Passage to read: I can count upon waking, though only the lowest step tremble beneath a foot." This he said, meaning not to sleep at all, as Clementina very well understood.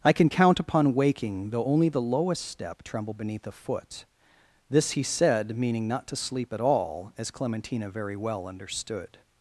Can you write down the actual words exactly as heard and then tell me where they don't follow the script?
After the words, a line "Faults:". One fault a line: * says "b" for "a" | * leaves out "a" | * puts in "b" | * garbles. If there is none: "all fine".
I can count upon waking, though only the lowest step tremble beneath a foot." This he said, meaning not to sleep at all, as Clementina very well understood.
Faults:
all fine